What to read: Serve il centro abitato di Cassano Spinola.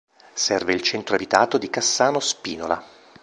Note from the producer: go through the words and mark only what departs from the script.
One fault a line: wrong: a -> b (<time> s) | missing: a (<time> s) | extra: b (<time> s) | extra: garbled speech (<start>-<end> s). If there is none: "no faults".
no faults